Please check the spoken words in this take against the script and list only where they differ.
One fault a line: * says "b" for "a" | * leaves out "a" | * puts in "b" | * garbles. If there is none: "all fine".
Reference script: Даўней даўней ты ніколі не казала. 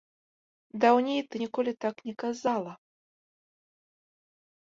* leaves out "даўней"
* puts in "так"